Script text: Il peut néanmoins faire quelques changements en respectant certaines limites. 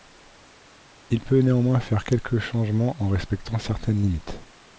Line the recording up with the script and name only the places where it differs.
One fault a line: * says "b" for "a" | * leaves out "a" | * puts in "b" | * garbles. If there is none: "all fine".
all fine